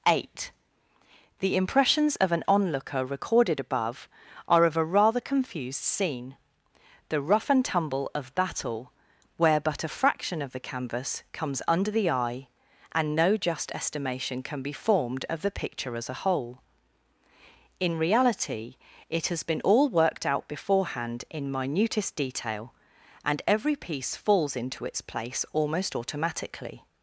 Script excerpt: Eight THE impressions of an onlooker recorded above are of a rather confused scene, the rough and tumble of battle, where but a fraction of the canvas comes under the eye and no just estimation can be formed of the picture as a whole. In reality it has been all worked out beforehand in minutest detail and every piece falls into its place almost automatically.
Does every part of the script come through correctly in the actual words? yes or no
yes